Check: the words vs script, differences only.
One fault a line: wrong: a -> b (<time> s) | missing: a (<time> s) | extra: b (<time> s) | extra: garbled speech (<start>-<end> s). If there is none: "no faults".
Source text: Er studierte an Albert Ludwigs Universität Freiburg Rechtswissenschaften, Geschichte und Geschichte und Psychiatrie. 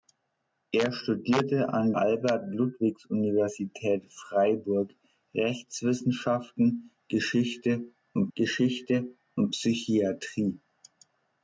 no faults